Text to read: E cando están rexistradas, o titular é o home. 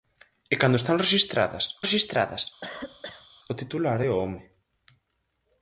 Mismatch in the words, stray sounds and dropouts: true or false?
true